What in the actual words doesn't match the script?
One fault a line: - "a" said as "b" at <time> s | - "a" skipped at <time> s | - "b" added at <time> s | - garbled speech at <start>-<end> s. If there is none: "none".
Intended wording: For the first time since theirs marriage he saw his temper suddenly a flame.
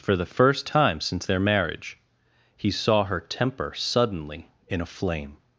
- "theirs" said as "their" at 1.3 s
- "his" said as "her" at 3.0 s
- "in" added at 4.7 s